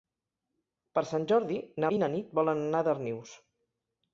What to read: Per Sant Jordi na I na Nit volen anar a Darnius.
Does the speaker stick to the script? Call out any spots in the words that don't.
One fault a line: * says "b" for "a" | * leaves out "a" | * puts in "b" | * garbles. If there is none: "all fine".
all fine